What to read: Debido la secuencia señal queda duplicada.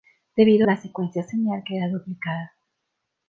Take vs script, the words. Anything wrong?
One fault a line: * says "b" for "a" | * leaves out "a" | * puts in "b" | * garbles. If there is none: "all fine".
all fine